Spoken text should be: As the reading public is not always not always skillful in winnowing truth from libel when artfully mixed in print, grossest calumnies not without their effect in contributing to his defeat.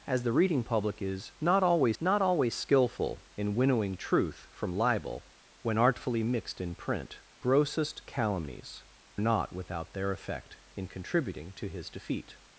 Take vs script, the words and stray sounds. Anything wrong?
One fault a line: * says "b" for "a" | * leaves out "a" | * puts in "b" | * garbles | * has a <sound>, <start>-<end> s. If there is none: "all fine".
all fine